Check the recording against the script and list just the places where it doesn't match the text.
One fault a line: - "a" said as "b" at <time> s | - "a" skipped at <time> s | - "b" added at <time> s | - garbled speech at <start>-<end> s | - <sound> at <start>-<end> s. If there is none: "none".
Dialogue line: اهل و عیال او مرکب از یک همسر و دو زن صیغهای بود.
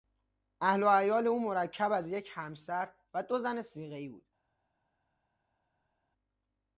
none